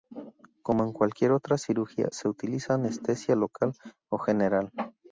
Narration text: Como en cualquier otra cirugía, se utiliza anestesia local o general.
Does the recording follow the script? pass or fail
pass